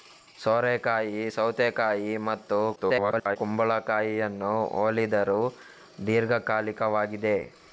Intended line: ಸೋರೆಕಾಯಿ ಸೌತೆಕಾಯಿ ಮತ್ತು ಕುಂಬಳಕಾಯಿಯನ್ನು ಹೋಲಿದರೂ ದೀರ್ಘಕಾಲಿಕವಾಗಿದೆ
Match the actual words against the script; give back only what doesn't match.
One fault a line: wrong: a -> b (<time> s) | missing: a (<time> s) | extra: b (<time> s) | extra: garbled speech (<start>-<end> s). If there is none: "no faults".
extra: garbled speech (2.8-3.4 s)